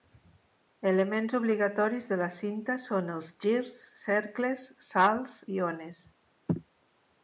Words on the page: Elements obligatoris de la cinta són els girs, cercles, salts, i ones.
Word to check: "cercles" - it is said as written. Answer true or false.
true